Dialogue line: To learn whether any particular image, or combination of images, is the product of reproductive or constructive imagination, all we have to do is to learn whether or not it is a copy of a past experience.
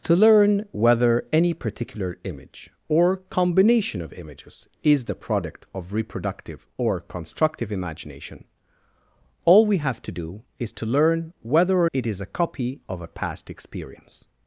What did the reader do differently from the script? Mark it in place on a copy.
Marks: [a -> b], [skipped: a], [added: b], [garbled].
To learn whether any particular image, or combination of images, is the product of reproductive or constructive imagination, all we have to do is to learn whether or [skipped: not] it is a copy of a past experience.